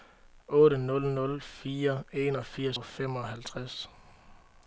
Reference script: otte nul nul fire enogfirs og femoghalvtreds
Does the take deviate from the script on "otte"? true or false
false